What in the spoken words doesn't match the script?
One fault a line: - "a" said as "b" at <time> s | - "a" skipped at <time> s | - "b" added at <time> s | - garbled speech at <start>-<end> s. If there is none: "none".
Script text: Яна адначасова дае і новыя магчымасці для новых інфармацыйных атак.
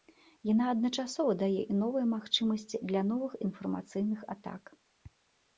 none